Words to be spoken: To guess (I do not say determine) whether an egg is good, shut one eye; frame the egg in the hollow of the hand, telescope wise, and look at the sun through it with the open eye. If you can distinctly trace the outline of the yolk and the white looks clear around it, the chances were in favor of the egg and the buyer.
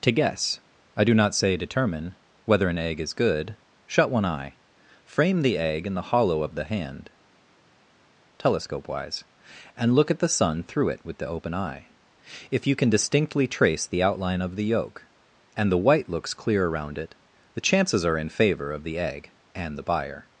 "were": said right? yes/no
no